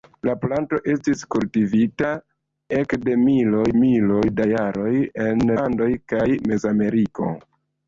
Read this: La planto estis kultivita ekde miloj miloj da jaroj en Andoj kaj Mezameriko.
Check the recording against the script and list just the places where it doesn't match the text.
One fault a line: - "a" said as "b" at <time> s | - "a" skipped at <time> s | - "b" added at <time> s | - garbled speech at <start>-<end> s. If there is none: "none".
none